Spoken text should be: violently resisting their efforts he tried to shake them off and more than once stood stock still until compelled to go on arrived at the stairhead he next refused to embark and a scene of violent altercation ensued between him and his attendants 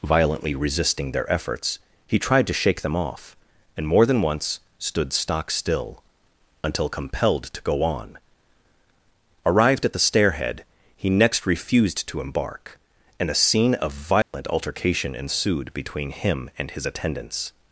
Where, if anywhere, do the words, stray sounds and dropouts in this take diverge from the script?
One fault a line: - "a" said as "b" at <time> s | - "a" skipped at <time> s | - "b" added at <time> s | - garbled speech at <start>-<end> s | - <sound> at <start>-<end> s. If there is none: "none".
- dropout at 14.2-14.3 s